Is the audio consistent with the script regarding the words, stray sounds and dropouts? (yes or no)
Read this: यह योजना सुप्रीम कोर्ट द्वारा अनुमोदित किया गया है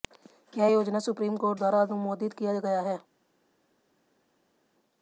yes